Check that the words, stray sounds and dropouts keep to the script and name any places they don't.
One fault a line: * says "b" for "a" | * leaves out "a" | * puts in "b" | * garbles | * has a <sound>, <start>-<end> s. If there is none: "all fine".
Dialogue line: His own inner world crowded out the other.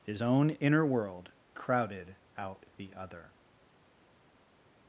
all fine